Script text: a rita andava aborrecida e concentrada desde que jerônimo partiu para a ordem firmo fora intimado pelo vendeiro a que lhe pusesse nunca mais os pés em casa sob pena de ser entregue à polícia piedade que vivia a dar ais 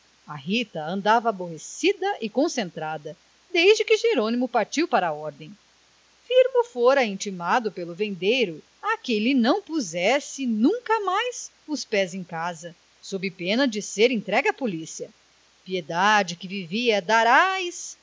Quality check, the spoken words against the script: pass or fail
fail